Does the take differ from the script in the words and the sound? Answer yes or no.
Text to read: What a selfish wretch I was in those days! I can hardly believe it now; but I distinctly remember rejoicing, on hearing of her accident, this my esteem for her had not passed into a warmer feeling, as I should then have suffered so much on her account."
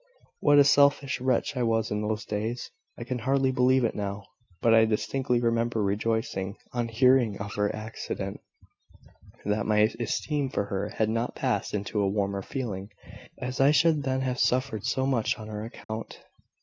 yes